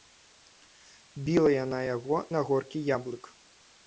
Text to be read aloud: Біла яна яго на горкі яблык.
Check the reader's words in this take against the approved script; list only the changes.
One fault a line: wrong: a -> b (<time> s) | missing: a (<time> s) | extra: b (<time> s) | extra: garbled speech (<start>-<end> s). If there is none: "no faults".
no faults